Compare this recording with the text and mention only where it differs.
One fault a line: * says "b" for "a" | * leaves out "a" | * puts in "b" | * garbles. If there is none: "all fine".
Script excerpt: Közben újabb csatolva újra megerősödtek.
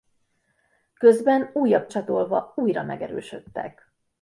all fine